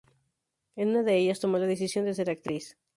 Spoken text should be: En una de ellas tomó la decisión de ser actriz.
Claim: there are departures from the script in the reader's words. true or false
false